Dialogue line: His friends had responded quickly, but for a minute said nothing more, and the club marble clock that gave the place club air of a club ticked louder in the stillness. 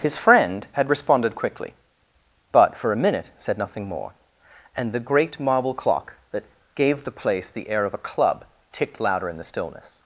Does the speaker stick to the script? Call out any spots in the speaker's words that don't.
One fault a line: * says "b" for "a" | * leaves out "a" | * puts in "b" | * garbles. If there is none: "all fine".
* says "friend" for "friends"
* says "great" for "club"
* says "the" for "club"